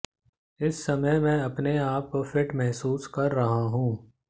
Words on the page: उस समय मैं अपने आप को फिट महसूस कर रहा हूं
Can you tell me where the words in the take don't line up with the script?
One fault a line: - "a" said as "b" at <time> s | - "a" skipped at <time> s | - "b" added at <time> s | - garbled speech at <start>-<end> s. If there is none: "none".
- "उस" said as "इस" at 0.6 s